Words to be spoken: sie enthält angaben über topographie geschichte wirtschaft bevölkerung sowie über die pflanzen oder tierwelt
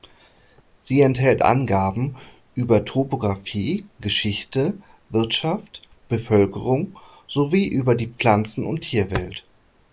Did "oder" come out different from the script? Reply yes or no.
yes